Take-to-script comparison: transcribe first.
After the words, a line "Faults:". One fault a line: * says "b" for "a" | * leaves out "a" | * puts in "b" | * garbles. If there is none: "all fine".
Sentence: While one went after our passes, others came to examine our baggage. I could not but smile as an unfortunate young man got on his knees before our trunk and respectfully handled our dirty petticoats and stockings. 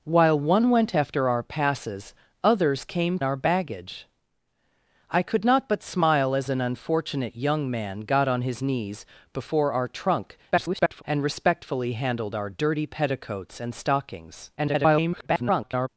While one went after our passes, others came our baggage. I could not but smile as an unfortunate young man got on his knees before our trunk [garbled] and respectfully handled our dirty petticoats and stockings. [garbled]
Faults:
* leaves out "to examine"
* garbles
* garbles